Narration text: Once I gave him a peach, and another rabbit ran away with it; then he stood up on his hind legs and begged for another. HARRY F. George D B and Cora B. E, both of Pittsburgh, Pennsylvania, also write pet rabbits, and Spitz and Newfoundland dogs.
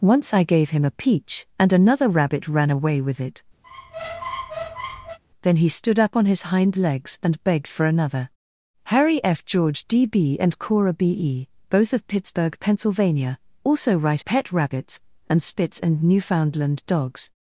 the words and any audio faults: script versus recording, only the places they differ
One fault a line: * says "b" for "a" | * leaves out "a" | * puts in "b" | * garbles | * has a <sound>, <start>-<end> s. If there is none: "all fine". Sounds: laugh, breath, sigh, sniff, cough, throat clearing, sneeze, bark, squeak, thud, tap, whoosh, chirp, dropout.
* has a squeak, 3.6-5.2 s